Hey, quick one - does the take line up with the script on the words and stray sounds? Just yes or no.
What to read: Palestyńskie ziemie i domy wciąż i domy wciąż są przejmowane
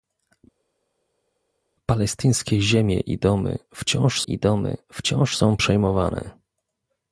yes